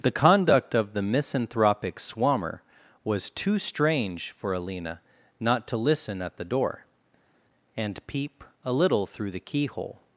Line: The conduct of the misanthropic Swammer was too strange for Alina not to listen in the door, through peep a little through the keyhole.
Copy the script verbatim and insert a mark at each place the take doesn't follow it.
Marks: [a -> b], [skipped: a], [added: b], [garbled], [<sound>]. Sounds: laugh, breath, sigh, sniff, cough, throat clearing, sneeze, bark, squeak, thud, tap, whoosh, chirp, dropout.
The conduct of the misanthropic Swammer was too strange for Alina not to listen [in -> at] the door, [through -> and] peep a little through the keyhole.